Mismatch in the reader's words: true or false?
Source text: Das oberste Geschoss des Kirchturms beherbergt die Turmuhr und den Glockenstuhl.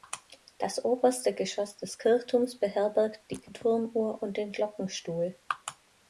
false